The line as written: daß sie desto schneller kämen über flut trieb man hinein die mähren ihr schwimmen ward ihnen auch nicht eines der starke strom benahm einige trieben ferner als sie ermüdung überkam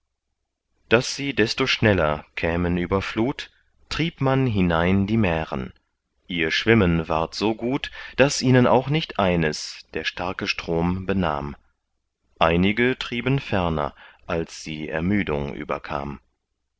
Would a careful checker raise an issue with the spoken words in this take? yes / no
yes